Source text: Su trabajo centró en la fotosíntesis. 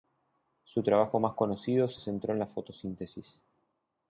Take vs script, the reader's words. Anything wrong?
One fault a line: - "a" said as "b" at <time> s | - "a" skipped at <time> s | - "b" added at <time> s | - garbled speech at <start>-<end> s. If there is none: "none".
- "más conocido se" added at 1.2 s